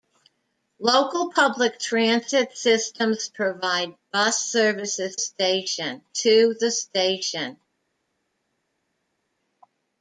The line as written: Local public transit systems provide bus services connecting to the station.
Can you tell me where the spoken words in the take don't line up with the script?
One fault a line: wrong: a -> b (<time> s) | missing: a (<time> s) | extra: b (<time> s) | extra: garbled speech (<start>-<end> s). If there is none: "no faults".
wrong: connecting -> station (5.1 s)